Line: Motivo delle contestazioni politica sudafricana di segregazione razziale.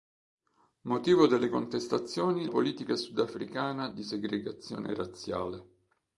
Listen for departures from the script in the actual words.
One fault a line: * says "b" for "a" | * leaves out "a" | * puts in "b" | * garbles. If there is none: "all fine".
all fine